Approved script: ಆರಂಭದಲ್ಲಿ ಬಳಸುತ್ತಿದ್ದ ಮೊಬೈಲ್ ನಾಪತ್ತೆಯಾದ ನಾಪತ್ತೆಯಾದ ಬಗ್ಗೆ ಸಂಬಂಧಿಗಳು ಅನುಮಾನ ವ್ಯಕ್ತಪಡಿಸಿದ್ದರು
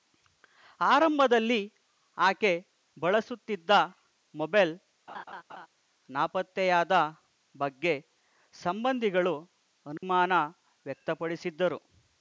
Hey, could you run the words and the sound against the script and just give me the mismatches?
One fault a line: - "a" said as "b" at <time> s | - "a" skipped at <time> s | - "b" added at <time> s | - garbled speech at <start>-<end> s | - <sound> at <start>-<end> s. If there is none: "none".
- "ಆಕೆ" added at 2.2 s
- laugh at 5.1-5.7 s
- "ನಾಪತ್ತೆಯಾದ" skipped at 6.9 s
- dropout at 10.0-10.0 s